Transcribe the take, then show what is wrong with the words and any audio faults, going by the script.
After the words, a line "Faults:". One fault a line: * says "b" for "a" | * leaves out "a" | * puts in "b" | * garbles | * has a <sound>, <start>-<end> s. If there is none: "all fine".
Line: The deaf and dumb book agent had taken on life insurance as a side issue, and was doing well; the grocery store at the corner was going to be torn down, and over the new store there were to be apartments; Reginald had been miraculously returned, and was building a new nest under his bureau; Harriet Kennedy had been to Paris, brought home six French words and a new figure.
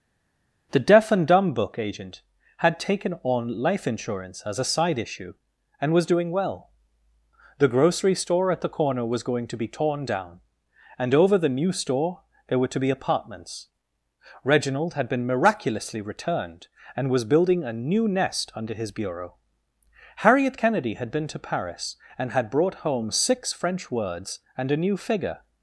The deaf and dumb book agent had taken on life insurance as a side issue, and was doing well; the grocery store at the corner was going to be torn down, and over the new store there were to be apartments; Reginald had been miraculously returned, and was building a new nest under his bureau; Harriet Kennedy had been to Paris, and had brought home six French words and a new figure.
Faults:
* puts in "and had"